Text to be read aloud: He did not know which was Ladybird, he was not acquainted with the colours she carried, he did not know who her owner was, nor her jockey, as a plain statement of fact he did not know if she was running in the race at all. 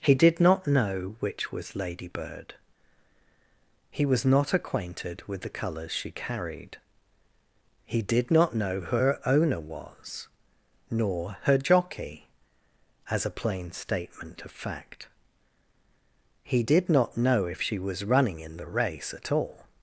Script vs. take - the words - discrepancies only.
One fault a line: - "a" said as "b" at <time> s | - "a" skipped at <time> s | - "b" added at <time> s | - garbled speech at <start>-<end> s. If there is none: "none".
none